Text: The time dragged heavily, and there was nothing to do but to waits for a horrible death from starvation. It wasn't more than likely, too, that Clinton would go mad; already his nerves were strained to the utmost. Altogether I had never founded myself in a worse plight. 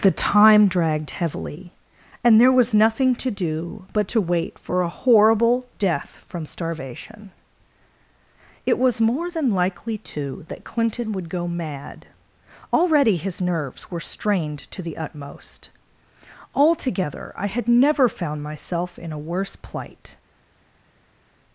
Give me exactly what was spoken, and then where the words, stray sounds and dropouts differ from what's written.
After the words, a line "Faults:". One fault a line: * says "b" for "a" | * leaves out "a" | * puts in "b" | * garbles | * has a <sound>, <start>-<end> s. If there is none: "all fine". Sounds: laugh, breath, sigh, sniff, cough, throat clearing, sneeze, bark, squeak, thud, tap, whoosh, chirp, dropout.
The time dragged heavily, and there was nothing to do but to wait for a horrible death from starvation. It was more than likely, too, that Clinton would go mad; already his nerves were strained to the utmost. Altogether I had never found myself in a worse plight.
Faults:
* says "wait" for "waits"
* says "was" for "wasn't"
* says "found" for "founded"